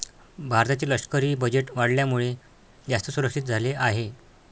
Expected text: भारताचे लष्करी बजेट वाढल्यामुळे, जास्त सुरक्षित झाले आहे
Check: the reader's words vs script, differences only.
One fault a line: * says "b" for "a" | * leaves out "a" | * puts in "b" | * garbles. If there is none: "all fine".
all fine